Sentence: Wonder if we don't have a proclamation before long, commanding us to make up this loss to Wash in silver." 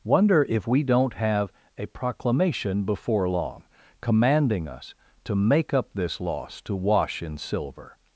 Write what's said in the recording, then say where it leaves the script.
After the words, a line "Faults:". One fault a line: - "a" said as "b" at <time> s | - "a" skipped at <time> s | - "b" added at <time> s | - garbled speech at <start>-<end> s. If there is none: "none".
Wonder if we don't have a proclamation before long, commanding us to make up this loss to Wash in silver."
Faults:
none